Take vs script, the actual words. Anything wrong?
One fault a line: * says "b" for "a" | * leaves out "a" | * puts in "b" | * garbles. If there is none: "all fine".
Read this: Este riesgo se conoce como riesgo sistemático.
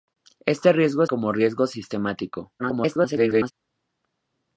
* leaves out "se conoce"
* garbles